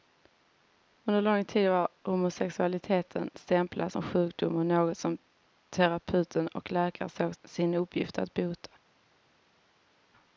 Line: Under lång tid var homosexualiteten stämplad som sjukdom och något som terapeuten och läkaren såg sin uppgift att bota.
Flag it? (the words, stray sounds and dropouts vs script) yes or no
no